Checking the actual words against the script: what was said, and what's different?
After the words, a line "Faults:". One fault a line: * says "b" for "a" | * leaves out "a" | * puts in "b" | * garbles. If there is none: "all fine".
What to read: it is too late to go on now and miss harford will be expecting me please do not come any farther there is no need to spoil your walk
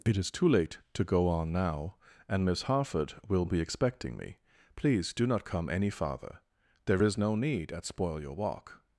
it is too late to go on now and miss harford will be expecting me please do not come any farther there is no need at spoil your walk
Faults:
* says "at" for "to"